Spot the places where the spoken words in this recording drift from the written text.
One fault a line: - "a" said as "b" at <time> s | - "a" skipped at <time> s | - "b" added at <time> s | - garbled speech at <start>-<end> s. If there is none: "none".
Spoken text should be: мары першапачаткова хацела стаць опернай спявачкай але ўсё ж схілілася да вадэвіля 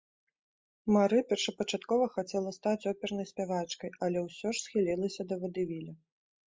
none